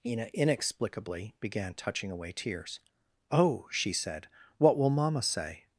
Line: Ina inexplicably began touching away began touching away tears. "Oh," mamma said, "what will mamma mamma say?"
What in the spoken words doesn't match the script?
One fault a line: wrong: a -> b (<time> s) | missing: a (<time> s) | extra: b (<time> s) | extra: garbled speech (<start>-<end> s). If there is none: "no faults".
missing: began touching away (2.3 s)
wrong: mamma -> she (3.7 s)
missing: mamma (5.2 s)